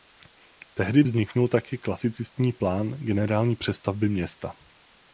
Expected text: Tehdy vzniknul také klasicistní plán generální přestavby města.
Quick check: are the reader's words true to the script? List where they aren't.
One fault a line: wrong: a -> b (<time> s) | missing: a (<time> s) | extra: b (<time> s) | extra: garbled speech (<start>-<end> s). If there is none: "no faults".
no faults